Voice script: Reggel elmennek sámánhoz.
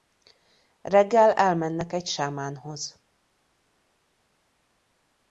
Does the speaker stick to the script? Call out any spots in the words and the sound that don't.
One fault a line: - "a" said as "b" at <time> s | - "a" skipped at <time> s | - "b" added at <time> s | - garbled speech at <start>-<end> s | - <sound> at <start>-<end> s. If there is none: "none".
- "egy" added at 1.9 s